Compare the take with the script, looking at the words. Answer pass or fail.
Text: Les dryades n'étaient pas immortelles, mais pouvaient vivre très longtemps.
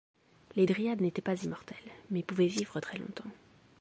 pass